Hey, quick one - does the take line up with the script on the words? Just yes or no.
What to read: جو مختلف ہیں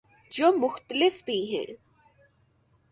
no